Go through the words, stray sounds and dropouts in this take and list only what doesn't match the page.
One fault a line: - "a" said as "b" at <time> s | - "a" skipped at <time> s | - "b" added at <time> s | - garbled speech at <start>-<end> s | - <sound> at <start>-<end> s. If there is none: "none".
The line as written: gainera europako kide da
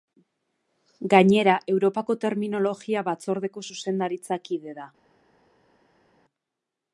- "terminologia batzordeko zuzendaritza" added at 2.2 s